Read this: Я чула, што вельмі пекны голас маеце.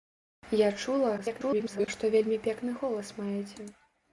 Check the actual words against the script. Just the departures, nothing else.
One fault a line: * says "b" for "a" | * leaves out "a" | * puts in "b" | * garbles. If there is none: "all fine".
* garbles